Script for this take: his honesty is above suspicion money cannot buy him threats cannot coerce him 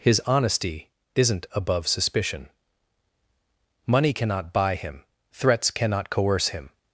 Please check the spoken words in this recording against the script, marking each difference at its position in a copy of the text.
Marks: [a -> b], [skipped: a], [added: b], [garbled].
his honesty [is -> isn't] above suspicion money cannot buy him threats cannot coerce him